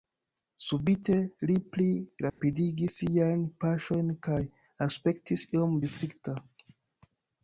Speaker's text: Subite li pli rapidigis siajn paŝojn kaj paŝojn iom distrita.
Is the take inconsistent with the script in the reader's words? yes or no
yes